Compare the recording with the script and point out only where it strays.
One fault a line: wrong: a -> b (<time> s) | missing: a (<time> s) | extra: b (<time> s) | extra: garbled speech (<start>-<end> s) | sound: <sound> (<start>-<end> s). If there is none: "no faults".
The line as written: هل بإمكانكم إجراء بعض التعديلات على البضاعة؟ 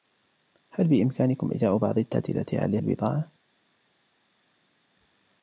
no faults